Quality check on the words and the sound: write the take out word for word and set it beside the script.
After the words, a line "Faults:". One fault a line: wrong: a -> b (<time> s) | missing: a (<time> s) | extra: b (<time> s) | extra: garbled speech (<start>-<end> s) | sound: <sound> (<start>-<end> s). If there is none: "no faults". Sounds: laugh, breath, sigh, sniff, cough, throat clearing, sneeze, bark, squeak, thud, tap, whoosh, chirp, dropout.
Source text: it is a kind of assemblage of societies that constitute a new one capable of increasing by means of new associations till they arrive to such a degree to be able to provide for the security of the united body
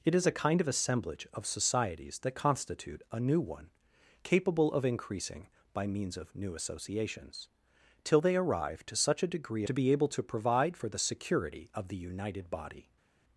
it is a kind of assemblage of societies that constitute a new one capable of increasing by means of new associations till they arrive to such a degree to be able to provide for the security of the united body
Faults:
no faults